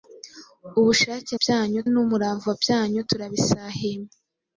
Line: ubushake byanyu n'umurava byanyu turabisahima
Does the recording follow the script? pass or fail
pass